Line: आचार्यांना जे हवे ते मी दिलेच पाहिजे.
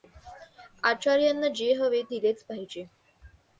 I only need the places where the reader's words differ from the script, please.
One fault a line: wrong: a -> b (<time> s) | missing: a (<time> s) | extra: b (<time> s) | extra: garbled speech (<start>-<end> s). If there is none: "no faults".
missing: ते मी (2.0 s)